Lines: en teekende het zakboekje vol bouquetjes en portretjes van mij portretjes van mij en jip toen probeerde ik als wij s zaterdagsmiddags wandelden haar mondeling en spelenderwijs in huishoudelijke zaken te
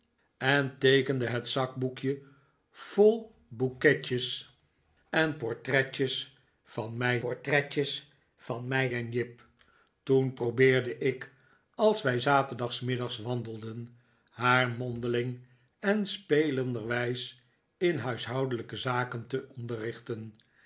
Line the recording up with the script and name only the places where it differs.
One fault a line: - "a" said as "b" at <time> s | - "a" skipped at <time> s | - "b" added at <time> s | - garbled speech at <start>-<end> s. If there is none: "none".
none